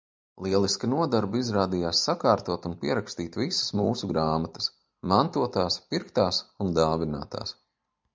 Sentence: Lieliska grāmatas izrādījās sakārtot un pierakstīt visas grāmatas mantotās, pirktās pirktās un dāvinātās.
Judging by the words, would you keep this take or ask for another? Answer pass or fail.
fail